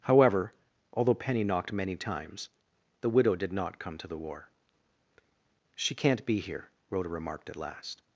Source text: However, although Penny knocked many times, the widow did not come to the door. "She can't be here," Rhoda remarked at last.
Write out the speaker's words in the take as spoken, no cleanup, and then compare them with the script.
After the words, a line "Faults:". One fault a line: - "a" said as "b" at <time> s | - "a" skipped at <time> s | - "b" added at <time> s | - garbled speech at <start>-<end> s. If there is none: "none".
However, although Penny knocked many times, the widow did not come to the war. "She can't be here," Rhoda remarked at last.
Faults:
- "door" said as "war" at 4.2 s